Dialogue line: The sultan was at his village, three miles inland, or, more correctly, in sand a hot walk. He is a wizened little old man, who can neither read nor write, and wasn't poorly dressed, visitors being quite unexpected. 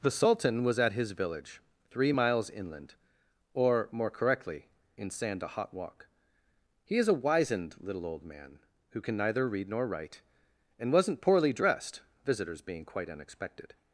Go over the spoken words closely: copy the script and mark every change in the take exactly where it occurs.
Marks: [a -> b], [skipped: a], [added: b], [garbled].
The sultan was at his village, three miles inland, or, more correctly, in sand a hot walk. He is a wizened little old man, who can neither read nor write, and wasn't poorly dressed, visitors being quite unexpected.